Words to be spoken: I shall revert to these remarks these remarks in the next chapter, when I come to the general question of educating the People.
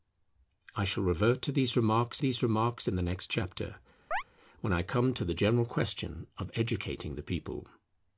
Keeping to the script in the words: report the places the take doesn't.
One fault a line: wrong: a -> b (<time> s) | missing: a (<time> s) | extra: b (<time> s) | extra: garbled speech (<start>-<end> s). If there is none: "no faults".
no faults